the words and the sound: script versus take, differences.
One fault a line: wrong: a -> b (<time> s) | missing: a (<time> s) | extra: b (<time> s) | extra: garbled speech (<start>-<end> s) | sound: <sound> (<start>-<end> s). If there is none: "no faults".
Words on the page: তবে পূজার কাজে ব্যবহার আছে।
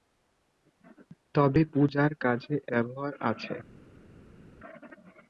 no faults